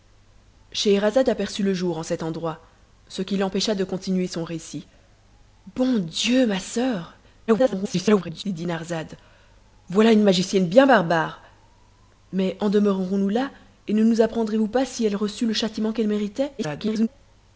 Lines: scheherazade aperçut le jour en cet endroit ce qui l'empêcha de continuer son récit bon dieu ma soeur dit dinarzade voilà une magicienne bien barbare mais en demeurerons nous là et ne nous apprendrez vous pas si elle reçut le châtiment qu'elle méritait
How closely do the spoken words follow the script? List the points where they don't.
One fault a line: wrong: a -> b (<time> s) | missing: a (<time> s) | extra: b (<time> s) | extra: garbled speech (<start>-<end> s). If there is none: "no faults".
extra: garbled speech (7.5-8.4 s)
extra: garbled speech (16.6-17.1 s)